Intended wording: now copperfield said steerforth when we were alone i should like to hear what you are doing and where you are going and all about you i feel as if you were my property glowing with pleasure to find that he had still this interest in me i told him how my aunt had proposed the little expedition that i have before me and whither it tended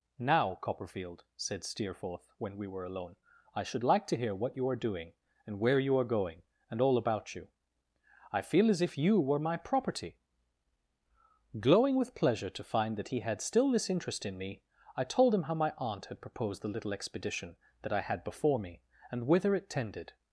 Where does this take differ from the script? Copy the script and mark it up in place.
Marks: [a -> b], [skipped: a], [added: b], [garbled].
now copperfield said steerforth when we were alone i should like to hear what you are doing and where you are going and all about you i feel as if you were my property glowing with pleasure to find that he had still this interest in me i told him how my aunt had proposed the little expedition that i [have -> had] before me and whither it tended